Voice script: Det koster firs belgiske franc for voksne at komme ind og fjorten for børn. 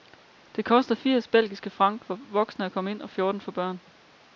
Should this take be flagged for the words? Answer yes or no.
no